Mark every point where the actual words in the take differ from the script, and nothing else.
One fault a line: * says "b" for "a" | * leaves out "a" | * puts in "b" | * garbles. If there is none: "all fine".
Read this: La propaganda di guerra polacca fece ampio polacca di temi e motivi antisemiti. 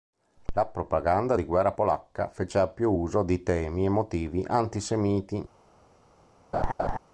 * says "uso" for "polacca"